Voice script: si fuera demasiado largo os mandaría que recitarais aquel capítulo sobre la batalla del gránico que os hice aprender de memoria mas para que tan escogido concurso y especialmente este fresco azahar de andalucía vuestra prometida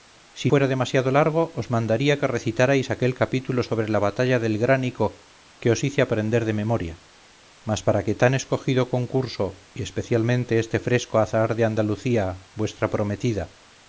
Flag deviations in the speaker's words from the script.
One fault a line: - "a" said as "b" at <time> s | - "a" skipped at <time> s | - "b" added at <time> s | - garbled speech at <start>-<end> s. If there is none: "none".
none